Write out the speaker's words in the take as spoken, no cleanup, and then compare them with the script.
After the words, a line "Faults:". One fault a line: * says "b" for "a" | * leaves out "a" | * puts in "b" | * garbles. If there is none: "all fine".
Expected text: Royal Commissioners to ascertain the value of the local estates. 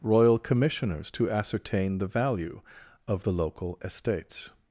Royal Commissioners to ascertain the value of the local estates.
Faults:
all fine